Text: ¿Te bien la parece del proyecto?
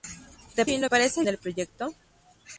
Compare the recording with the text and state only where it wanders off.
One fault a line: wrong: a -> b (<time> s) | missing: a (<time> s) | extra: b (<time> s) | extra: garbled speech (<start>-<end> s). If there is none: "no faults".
no faults